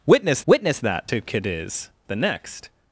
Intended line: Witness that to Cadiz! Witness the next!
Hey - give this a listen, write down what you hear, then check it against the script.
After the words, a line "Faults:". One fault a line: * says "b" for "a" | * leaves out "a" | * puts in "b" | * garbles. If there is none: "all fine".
Witness witness that to Cadiz! The next!
Faults:
* puts in "witness"
* leaves out "Witness"